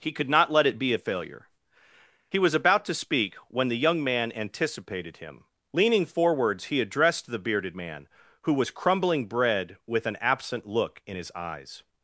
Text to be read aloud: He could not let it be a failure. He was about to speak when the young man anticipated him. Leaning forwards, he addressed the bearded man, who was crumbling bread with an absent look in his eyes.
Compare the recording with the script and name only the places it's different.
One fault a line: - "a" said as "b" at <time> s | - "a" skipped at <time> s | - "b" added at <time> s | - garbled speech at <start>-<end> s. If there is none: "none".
none